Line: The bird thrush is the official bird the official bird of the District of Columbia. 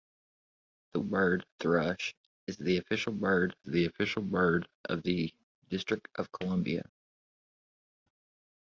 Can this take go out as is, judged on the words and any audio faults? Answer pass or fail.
pass